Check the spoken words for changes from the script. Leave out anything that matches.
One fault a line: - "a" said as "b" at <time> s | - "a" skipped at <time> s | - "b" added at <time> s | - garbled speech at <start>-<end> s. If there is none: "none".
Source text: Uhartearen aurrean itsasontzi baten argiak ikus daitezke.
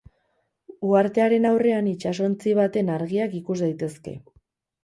none